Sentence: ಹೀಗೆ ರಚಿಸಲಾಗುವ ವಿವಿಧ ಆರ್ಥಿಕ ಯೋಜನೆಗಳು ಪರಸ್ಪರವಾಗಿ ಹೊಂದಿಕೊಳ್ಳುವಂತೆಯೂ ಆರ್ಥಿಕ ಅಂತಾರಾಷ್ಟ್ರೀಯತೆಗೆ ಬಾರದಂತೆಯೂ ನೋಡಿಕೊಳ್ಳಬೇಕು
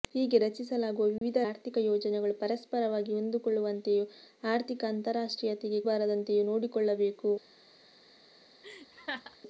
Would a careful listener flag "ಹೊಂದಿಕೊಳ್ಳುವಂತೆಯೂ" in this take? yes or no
no